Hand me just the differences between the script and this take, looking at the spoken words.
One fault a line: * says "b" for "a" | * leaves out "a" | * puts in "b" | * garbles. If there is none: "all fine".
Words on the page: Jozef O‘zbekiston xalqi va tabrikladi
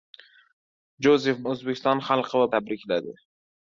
all fine